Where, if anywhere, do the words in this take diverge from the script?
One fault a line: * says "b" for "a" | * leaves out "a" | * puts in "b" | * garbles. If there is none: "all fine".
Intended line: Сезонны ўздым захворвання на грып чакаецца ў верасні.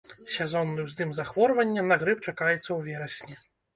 all fine